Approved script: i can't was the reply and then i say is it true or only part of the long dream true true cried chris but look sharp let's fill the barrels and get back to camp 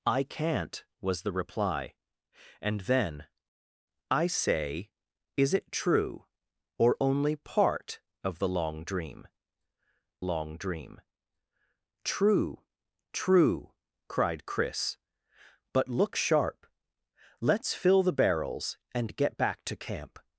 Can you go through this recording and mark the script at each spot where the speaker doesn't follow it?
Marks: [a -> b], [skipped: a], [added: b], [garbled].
i can't was the reply and then i say is it true or only part of the long dream [added: long dream] true true cried chris but look sharp let's fill the barrels and get back to camp